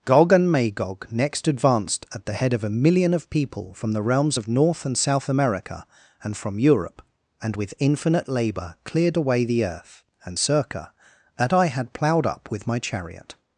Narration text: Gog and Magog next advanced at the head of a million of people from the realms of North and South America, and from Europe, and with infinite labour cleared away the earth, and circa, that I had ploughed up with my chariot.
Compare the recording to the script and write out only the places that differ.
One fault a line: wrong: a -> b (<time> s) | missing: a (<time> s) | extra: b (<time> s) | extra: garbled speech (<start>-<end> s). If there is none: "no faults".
no faults